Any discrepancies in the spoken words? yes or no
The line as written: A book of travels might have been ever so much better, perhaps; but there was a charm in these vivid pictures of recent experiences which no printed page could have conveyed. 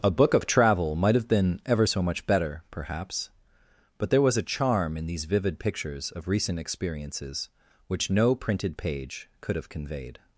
yes